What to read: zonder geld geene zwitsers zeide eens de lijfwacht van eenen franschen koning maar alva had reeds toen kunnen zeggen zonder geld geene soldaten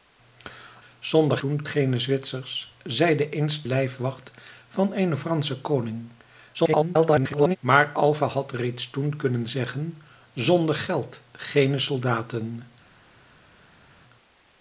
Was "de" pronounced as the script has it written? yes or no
no